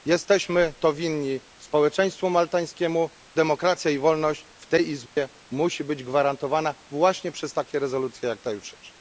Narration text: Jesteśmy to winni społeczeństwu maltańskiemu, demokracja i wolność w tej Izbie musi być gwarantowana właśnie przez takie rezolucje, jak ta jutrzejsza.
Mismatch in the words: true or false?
false